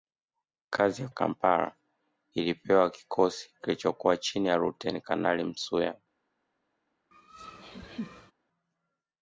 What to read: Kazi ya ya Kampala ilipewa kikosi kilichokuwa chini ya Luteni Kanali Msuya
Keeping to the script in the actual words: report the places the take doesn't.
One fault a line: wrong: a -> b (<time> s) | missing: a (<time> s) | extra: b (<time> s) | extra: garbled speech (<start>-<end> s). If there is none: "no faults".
no faults